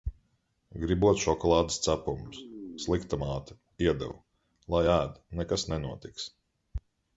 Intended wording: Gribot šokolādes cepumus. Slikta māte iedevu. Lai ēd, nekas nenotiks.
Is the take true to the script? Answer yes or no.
yes